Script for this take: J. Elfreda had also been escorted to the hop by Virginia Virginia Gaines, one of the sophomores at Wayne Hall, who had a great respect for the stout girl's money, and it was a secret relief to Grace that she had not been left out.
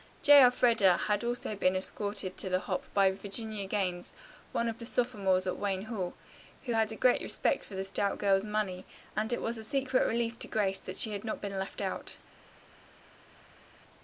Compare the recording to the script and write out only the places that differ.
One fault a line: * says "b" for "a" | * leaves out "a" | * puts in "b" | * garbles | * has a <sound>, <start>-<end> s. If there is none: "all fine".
* leaves out "Virginia"